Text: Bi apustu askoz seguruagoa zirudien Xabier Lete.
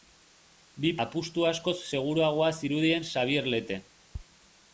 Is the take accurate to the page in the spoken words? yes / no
yes